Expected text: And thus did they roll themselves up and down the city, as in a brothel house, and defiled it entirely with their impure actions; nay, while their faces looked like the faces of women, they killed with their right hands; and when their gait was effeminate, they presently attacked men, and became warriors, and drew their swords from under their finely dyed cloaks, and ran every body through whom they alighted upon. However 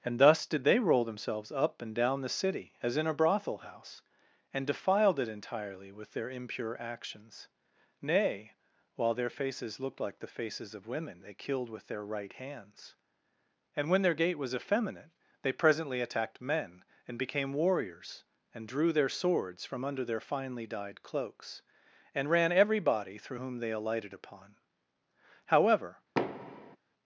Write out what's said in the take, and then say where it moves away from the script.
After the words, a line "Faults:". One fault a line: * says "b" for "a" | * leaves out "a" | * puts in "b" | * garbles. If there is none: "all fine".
And thus did they roll themselves up and down the city, as in a brothel house, and defiled it entirely with their impure actions; nay, while their faces looked like the faces of women, they killed with their right hands; and when their gait was effeminate, they presently attacked men, and became warriors, and drew their swords from under their finely dyed cloaks, and ran every body through whom they alighted upon. However
Faults:
all fine